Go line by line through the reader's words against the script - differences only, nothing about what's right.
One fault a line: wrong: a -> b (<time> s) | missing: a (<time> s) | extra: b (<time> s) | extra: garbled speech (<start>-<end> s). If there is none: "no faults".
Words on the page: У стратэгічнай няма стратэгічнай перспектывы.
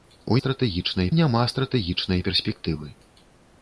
no faults